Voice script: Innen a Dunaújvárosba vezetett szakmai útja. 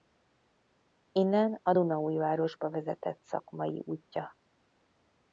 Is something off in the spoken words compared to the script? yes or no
no